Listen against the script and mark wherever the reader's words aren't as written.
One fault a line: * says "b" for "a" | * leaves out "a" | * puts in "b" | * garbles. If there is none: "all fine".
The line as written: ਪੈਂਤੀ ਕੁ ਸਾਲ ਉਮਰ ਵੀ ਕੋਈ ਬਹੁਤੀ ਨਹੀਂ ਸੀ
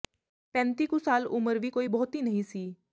all fine